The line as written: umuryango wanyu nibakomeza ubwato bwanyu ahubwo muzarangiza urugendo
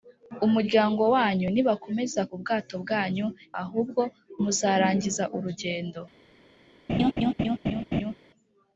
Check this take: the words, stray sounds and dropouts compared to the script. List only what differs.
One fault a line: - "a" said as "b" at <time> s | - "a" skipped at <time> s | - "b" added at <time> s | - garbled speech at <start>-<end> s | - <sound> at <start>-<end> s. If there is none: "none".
- laugh at 6.9-8.1 s